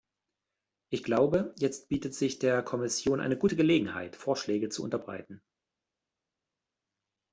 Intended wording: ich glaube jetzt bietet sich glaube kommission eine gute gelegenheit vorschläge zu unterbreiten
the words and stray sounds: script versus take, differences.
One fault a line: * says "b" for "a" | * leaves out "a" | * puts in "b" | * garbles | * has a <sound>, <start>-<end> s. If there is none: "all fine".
* says "der" for "glaube"